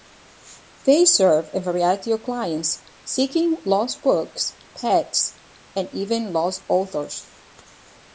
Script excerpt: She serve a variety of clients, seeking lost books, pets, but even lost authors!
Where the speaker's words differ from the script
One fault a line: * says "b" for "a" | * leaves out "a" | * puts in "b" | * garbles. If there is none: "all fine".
* says "They" for "She"
* says "and" for "but"